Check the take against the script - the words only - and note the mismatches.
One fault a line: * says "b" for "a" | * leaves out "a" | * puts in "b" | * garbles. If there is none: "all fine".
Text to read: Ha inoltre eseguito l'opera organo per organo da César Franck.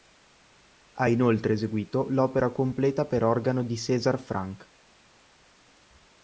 * says "completa" for "organo"
* says "di" for "da"